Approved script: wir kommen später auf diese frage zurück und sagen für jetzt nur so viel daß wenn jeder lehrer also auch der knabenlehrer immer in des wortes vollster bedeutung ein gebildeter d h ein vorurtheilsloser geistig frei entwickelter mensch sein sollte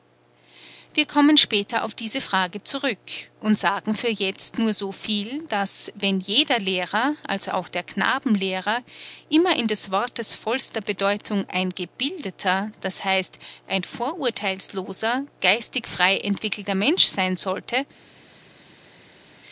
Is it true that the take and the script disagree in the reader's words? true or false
false